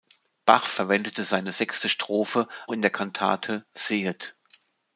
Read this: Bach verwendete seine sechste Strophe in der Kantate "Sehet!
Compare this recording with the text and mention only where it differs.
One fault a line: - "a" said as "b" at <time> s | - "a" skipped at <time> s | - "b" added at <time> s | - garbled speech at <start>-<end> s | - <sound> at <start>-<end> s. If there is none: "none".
none